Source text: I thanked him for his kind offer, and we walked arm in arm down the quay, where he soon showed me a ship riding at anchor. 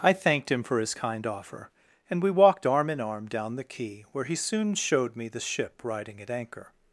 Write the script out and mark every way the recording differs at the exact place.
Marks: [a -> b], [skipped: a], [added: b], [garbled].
I thanked him for his kind offer, and we walked arm in arm down the quay, where he soon showed me [a -> the] ship riding at anchor.